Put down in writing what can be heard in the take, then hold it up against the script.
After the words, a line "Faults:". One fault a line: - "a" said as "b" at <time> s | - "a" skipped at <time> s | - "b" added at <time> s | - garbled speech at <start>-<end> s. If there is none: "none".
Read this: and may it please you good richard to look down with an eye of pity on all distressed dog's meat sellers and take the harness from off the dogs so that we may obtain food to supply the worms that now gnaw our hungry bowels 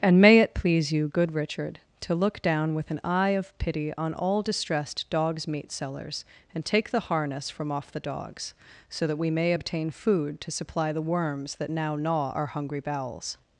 and may it please you good richard to look down with an eye of pity on all distressed dog's meat sellers and take the harness from off the dogs so that we may obtain food to supply the worms that now gnaw our hungry bowels
Faults:
none